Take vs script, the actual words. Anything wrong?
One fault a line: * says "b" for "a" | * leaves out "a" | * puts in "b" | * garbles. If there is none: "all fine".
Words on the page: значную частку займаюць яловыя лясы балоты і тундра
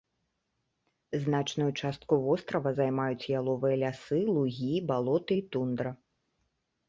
* puts in "вострава"
* puts in "лугі"